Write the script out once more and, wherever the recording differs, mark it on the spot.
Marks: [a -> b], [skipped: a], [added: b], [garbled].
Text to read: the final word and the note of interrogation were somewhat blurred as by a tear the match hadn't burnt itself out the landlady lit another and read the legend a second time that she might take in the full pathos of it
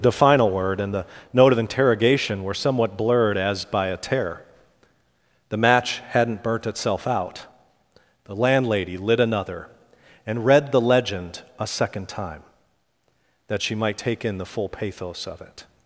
the final word and the note of interrogation were somewhat blurred as by a tear the match hadn't burnt itself out the landlady lit another and read the legend a second time that she might take in the full pathos of it